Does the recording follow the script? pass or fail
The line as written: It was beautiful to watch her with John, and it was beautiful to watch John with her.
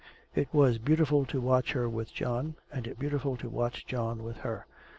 fail